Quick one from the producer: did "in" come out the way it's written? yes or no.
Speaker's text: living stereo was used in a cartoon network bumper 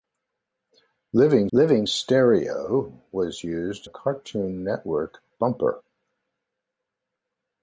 no